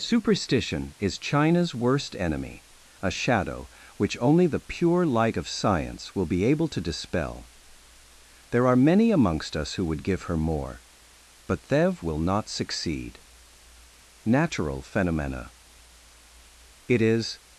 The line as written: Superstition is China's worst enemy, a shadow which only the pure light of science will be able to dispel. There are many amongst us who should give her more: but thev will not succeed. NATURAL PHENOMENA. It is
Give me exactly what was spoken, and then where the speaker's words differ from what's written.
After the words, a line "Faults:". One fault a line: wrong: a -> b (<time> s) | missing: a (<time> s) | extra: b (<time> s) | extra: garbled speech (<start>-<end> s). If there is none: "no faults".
Superstition is China's worst enemy, a shadow which only the pure light of science will be able to dispel. There are many amongst us who would give her more: but thev will not succeed. NATURAL PHENOMENA. It is
Faults:
wrong: should -> would (9.8 s)